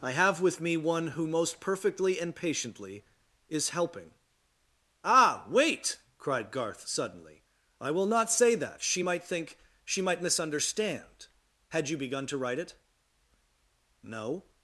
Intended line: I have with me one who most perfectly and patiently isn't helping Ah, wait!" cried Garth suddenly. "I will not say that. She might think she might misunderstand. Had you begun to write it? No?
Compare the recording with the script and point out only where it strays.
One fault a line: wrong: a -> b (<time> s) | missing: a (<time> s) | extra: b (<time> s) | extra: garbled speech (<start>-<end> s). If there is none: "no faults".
wrong: isn't -> is (3.5 s)